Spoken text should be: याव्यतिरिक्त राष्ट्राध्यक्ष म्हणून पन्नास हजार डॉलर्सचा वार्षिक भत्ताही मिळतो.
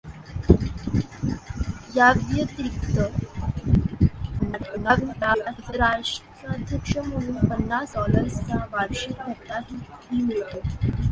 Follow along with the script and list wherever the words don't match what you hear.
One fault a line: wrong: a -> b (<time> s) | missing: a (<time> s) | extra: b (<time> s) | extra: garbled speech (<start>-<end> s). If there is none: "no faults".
extra: garbled speech (4.4-5.7 s)
missing: हजार (7.9 s)